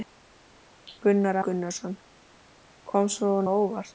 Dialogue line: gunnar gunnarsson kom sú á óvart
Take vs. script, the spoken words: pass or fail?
pass